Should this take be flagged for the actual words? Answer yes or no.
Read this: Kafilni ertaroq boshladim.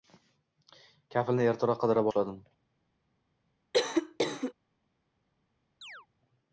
yes